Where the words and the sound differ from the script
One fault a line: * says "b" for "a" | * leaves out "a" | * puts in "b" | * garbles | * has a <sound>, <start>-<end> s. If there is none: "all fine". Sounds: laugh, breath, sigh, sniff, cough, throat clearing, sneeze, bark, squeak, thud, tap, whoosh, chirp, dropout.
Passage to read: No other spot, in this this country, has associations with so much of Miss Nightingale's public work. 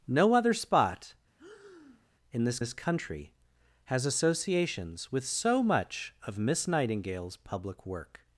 * has a breath, 1.4-2.1 s